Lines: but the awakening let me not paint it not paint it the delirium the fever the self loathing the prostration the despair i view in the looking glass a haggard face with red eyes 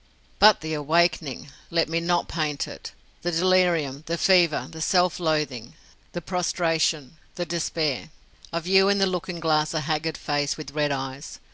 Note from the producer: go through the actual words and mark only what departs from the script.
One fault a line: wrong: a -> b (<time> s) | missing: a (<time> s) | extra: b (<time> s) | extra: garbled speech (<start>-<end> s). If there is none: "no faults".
missing: not paint it (2.9 s)